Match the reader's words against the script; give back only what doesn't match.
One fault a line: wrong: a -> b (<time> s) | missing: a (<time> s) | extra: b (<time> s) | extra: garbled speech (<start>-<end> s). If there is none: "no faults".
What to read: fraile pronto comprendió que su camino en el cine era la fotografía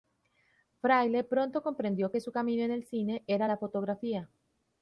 no faults